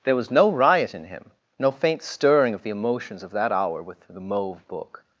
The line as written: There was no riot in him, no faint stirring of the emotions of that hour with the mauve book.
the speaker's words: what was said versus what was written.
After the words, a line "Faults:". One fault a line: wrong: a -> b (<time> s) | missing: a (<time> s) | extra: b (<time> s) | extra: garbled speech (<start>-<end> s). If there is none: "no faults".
There was no riot in him, no faint stirring of the emotions of that hour with the mauve book.
Faults:
no faults